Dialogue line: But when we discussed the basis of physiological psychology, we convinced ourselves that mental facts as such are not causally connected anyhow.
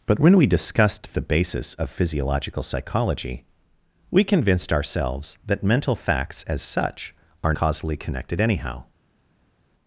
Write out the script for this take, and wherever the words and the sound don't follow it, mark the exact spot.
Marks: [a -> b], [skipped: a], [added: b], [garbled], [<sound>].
But when we discussed the basis of physiological psychology, we convinced ourselves that mental facts as such are [skipped: not] causally connected anyhow.